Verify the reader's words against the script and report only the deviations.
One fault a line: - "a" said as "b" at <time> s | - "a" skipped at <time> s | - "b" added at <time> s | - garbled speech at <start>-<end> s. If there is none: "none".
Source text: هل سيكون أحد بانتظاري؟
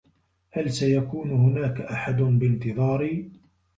- "هناك" added at 1.3 s